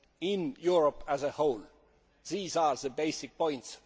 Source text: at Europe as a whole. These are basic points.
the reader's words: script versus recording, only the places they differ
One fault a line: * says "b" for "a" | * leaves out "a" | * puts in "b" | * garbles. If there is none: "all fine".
* says "in" for "at"
* puts in "the"